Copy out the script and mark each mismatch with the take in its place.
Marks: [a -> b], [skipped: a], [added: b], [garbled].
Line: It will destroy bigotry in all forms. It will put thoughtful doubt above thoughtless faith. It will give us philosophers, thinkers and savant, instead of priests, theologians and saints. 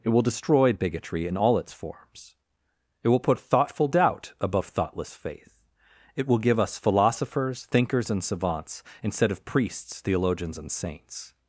It will destroy bigotry in all [added: its] forms. It will put thoughtful doubt above thoughtless faith. It will give us philosophers, thinkers and [savant, -> savants] instead of priests, theologians and saints.